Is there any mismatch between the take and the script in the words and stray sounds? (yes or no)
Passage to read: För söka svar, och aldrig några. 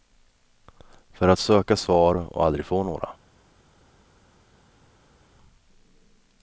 yes